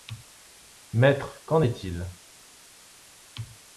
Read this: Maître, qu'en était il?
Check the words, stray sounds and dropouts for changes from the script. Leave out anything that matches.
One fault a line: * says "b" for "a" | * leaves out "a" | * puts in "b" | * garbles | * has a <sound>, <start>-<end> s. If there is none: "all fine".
* says "est" for "était"